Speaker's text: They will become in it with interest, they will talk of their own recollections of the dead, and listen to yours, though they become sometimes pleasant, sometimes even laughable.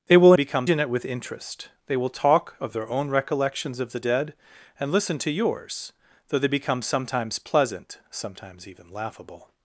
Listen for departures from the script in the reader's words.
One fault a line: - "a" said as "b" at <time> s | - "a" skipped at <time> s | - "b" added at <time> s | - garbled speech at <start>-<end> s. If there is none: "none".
none